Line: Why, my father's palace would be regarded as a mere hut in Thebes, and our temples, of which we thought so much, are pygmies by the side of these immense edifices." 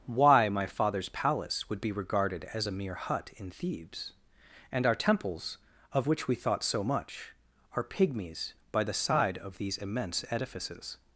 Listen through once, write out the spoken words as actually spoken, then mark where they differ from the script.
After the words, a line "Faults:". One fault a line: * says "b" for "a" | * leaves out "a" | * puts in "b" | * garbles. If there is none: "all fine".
Why, my father's palace would be regarded as a mere hut in Thebes, and our temples, of which we thought so much, are pygmies by the side of these immense edifices."
Faults:
all fine